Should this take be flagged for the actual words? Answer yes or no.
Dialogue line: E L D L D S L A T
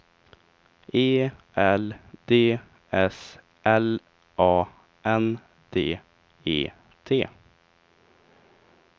yes